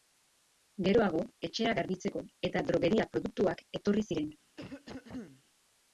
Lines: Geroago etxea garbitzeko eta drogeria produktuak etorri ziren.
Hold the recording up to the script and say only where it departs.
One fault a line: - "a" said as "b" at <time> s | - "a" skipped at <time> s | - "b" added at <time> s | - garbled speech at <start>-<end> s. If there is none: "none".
none